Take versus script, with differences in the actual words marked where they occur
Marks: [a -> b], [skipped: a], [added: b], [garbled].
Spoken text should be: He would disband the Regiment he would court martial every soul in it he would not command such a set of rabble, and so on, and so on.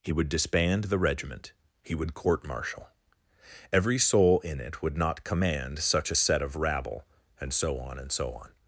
He would disband the Regiment he would court martial every soul in it [skipped: he] would not command such a set of rabble, and so on, and so on.